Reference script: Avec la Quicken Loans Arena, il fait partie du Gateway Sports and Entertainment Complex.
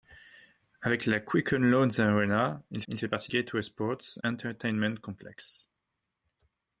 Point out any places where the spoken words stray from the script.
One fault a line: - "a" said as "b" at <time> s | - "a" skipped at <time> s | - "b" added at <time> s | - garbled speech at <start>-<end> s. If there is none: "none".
- "il" added at 2.9 s
- "du" skipped at 3.3 s
- "and" skipped at 4.2 s